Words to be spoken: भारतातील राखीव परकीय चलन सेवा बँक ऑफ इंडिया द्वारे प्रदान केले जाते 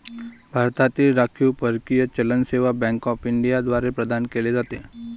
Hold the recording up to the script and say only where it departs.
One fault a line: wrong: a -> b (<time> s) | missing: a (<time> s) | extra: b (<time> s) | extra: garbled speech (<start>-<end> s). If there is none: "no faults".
no faults